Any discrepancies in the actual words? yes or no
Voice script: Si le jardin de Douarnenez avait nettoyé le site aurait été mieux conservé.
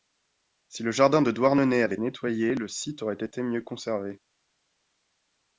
no